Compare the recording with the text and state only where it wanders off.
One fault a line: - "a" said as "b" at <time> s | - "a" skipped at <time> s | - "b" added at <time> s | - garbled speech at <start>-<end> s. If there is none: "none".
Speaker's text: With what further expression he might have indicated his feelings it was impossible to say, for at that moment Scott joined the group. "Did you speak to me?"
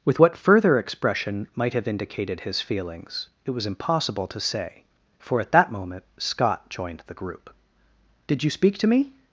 - "he" skipped at 1.5 s